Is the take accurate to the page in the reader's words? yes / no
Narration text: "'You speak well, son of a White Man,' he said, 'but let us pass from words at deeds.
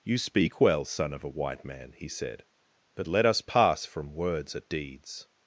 yes